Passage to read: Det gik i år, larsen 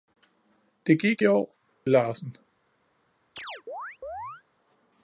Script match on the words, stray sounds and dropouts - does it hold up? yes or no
no